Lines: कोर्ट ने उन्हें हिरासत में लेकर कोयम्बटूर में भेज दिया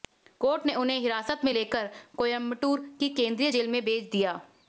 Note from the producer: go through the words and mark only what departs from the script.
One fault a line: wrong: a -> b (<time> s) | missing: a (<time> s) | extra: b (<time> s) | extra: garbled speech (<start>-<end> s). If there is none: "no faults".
extra: की केंद्रीय जेल (3.0 s)